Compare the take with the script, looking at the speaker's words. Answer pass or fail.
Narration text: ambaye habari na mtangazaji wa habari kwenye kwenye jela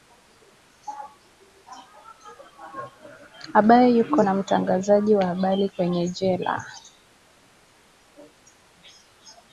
fail